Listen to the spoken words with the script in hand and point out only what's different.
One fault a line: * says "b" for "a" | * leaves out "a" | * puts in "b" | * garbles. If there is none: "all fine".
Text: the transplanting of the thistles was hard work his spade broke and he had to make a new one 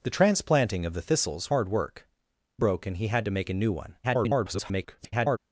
* leaves out "was"
* leaves out "his spade"
* garbles